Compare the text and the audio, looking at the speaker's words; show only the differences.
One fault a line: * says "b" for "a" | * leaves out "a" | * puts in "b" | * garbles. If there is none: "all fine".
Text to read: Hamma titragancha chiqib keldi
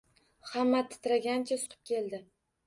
all fine